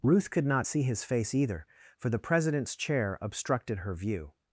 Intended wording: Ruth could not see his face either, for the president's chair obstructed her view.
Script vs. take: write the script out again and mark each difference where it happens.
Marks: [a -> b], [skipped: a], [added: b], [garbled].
Ruth could not see his face either, for the president's chair obstructed her view.